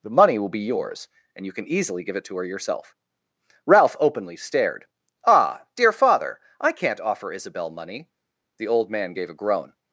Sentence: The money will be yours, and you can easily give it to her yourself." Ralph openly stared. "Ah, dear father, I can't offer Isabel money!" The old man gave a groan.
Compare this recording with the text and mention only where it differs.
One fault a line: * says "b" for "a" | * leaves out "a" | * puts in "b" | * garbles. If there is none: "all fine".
all fine